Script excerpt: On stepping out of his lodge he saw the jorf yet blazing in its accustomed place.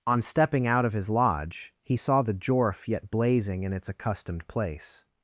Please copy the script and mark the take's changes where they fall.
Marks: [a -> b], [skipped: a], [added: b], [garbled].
On stepping out of his lodge he saw the jorf yet blazing in its accustomed place.